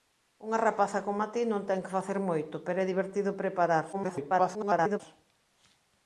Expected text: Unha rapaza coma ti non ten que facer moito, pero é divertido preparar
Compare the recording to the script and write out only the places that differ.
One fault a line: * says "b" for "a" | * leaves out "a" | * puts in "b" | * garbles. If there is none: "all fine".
* garbles